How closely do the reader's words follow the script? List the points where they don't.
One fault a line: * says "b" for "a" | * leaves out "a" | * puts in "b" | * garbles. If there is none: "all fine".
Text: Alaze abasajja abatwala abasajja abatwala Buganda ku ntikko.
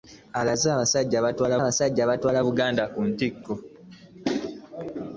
all fine